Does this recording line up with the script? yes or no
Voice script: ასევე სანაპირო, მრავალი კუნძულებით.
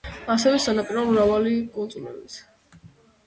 yes